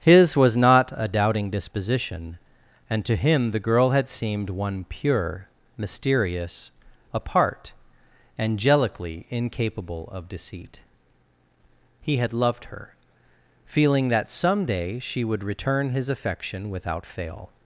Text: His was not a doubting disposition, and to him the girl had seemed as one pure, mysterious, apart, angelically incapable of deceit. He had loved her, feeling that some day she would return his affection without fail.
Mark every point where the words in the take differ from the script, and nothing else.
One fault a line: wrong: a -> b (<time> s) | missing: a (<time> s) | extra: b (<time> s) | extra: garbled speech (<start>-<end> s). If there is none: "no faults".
missing: as (4.5 s)